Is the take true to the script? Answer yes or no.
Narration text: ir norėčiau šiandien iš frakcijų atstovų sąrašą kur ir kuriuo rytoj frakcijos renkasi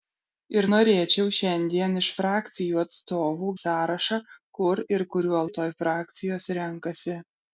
yes